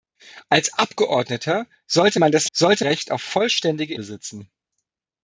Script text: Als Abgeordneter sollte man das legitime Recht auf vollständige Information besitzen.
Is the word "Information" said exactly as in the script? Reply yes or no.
no